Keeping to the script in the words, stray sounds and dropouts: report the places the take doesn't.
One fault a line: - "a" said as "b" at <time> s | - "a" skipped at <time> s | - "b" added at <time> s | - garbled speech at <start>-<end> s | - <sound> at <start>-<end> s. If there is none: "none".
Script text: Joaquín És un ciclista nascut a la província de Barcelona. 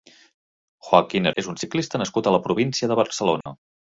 - dropout at 3.4-3.5 s